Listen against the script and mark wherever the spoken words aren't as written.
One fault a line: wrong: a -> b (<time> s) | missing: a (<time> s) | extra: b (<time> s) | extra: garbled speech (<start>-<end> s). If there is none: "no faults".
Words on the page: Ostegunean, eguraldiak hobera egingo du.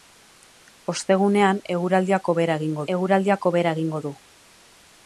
extra: eguraldiak hobera egingo (2.9 s)